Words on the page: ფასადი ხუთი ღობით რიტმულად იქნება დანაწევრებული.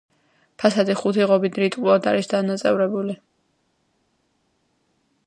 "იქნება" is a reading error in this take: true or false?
true